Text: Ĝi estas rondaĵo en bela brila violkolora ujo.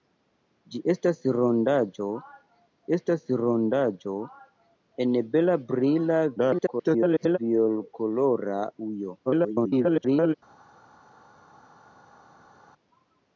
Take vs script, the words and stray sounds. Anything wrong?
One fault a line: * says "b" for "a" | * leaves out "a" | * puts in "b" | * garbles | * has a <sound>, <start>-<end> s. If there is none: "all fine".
* puts in "estas rondaĵo"
* garbles
* garbles